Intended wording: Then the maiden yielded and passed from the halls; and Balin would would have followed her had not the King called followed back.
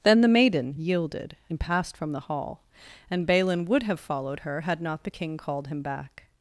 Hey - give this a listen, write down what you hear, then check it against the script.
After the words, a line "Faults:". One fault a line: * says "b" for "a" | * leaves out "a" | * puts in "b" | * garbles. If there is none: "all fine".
Then the maiden yielded and passed from the hall; and Balin would have followed her had not the King called him back.
Faults:
* says "hall" for "halls"
* leaves out "would"
* says "him" for "followed"